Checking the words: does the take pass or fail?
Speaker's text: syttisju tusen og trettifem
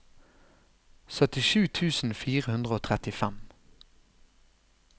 fail